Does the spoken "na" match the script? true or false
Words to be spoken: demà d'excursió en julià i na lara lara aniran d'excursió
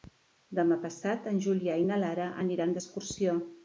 true